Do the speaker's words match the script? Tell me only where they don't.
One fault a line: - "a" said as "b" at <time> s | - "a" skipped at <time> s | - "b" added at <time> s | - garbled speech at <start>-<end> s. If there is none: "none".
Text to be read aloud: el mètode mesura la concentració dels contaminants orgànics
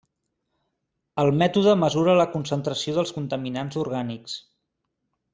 none